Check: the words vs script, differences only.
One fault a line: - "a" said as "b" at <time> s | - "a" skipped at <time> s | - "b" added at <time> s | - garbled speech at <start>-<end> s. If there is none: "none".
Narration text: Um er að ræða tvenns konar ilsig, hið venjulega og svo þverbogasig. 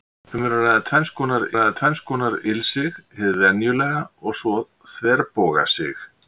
- "ræða tvenns konar" added at 1.6 s